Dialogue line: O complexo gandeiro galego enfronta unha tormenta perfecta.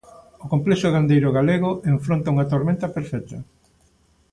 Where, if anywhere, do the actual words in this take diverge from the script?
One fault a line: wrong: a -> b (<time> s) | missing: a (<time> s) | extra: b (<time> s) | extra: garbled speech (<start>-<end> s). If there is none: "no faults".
no faults